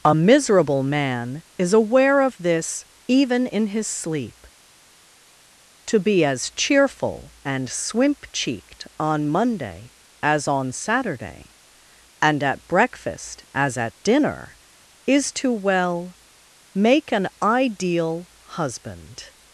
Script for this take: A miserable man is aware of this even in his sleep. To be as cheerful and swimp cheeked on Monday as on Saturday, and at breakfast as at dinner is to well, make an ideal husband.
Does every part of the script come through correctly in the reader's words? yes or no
yes